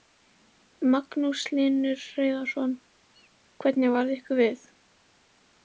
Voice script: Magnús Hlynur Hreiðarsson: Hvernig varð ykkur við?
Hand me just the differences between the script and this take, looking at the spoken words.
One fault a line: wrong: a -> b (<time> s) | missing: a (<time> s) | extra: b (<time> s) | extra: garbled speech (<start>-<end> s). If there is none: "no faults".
no faults